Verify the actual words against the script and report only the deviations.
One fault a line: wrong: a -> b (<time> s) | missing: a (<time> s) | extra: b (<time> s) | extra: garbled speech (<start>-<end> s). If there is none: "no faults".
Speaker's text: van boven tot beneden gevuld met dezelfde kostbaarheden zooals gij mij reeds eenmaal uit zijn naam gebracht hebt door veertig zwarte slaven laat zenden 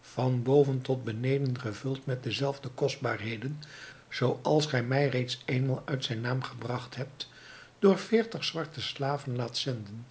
no faults